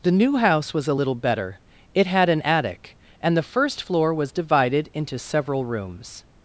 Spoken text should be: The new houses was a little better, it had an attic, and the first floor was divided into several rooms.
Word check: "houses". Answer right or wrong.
wrong